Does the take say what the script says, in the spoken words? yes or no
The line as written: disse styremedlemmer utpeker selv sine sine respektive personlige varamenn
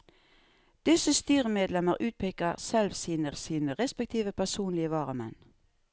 yes